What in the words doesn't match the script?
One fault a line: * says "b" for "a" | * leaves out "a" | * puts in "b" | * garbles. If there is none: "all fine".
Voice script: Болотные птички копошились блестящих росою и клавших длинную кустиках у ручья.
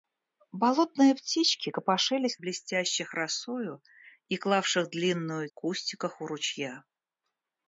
all fine